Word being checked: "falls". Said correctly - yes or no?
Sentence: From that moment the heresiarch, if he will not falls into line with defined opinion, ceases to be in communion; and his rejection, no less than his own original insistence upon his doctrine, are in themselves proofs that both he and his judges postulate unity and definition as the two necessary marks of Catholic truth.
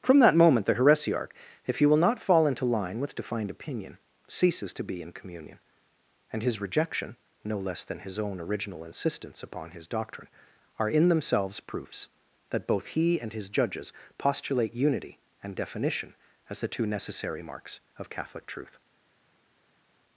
no